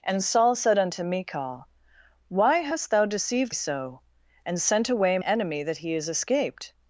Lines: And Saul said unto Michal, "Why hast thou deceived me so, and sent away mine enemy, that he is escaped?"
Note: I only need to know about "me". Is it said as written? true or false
false